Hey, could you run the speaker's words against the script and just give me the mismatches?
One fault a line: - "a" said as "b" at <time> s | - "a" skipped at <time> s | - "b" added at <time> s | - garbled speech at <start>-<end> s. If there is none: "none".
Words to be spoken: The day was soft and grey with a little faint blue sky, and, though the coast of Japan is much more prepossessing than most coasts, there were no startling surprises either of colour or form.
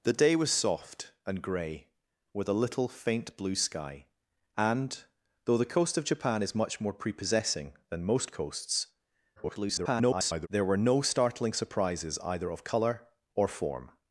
- garbled speech at 9.4-10.5 s